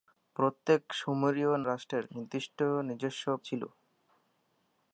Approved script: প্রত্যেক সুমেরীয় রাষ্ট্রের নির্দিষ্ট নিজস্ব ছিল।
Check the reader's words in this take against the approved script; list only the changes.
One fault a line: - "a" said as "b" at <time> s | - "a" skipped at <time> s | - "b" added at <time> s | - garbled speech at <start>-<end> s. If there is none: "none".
none